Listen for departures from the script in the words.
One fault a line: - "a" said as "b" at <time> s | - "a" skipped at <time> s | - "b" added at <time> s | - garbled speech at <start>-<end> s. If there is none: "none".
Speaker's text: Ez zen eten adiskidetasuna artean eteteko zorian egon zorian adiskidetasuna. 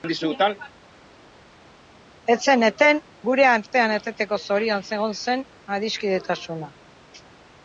- "adiskidetasuna" said as "gure" at 3.3 s
- "zorian" said as "zen" at 5.2 s